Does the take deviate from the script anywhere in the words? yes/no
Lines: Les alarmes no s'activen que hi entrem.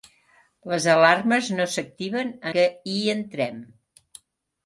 no